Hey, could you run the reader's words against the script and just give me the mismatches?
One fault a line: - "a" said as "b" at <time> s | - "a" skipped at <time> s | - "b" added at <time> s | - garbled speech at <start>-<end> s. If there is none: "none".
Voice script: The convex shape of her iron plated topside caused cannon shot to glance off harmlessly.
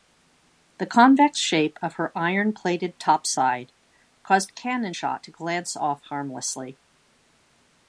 none